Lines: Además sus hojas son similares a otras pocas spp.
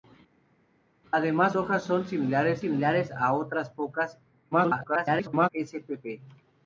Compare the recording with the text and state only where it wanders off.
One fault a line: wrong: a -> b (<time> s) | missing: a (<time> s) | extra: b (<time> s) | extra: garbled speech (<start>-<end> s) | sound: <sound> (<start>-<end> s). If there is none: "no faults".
missing: sus (1.5 s)
extra: similares (2.6 s)
extra: garbled speech (4.5-5.5 s)